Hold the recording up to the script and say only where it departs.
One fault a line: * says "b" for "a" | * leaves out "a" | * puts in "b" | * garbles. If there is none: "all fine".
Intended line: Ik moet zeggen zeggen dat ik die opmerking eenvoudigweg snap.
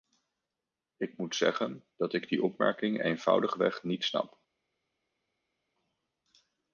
* leaves out "zeggen"
* puts in "niet"